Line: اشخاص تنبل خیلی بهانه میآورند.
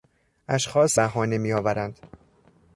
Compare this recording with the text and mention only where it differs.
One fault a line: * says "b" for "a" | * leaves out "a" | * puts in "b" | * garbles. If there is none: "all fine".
* leaves out "تنبل خیلی"